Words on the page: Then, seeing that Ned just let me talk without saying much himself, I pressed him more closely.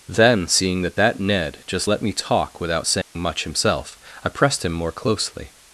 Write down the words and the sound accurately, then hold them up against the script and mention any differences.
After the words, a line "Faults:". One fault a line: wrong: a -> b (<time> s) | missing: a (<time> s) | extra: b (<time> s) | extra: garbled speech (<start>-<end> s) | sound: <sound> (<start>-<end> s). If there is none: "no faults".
Then, seeing that that Ned just let me talk without saying much himself, I pressed him more closely.
Faults:
extra: that (1.0 s)
sound: dropout (3.0-3.2 s)